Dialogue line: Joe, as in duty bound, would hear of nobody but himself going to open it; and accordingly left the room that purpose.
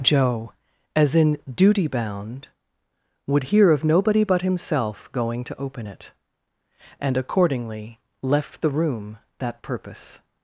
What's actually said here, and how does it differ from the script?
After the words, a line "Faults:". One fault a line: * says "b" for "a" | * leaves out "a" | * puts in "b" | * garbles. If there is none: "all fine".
Joe, as in duty bound, would hear of nobody but himself going to open it; and accordingly left the room that purpose.
Faults:
all fine